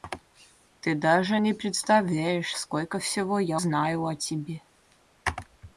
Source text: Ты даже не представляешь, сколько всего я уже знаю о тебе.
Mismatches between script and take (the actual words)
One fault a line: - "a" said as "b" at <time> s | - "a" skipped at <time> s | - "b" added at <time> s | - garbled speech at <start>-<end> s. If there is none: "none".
- "уже" skipped at 3.6 s